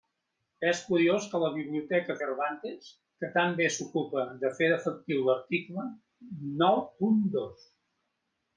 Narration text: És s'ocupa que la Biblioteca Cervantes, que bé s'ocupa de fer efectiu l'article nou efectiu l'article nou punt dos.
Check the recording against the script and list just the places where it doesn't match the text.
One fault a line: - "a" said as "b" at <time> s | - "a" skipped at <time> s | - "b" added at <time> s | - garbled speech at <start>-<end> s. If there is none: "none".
- "s'ocupa" said as "curiós" at 0.8 s
- "tan" added at 3.4 s
- "efectiu l'article nou" skipped at 6.8 s